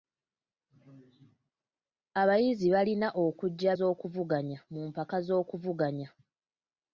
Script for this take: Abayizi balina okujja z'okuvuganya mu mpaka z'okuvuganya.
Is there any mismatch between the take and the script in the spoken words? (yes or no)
no